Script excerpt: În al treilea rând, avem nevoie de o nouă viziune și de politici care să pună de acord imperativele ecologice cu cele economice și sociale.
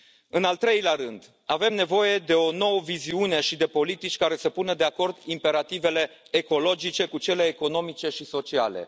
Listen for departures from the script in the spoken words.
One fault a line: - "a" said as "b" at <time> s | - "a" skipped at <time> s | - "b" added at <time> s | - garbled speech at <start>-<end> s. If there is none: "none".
none